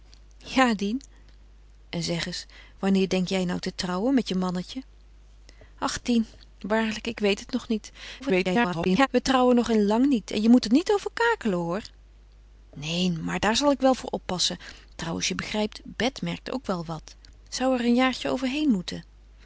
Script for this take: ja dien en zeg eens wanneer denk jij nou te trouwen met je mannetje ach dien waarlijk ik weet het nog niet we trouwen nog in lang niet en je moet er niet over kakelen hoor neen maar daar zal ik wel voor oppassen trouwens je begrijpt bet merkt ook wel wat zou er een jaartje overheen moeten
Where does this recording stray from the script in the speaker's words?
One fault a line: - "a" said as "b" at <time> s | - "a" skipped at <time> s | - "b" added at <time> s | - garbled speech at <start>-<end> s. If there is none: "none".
- garbled speech at 8.2-9.1 s